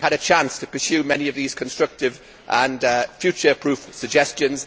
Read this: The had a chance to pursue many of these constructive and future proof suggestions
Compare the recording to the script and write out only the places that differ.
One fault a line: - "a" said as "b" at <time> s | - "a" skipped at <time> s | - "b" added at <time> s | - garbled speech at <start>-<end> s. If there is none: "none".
none